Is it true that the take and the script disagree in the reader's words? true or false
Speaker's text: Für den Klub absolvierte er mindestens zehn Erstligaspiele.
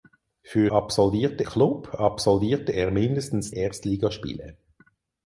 true